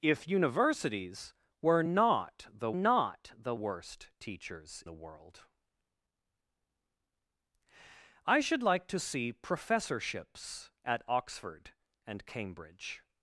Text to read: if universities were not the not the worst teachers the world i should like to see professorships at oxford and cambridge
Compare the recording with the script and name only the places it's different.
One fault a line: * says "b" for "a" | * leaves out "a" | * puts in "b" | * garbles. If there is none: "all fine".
all fine